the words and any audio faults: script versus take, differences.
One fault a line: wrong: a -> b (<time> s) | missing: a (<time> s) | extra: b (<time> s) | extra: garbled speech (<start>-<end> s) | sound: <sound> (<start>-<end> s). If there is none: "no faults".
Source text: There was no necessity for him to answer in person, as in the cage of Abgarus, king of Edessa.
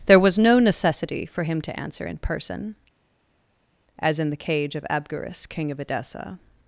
no faults